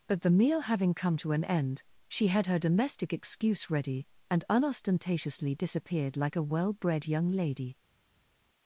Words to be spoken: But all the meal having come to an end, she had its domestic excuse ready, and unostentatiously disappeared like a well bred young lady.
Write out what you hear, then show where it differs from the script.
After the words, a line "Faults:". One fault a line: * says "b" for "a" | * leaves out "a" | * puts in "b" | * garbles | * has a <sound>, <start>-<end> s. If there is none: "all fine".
But the meal having come to an end, she had her domestic excuse ready, and unostentatiously disappeared like a well bred young lady.
Faults:
* leaves out "all"
* says "her" for "its"